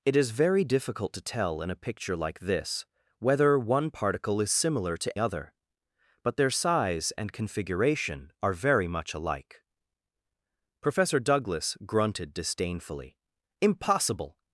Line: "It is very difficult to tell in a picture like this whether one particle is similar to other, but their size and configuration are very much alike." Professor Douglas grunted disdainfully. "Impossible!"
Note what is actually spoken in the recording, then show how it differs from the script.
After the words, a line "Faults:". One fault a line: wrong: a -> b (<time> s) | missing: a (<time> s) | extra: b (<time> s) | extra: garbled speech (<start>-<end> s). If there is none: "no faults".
"It is very difficult to tell in a picture like this whether one particle is similar to other, but their size and configuration are very much alike." Professor Douglas grunted disdainfully. "Impossible!"
Faults:
no faults